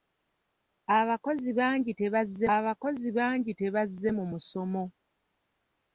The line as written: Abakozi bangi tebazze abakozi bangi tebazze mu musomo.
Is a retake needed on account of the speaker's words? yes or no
no